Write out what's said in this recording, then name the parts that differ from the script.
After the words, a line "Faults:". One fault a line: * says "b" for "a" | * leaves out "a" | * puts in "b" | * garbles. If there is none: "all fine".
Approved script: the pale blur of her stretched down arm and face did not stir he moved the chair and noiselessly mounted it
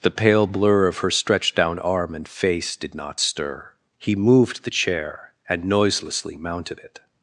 the pale blur of her stretched down arm and face did not stir he moved the chair and noiselessly mounted it
Faults:
all fine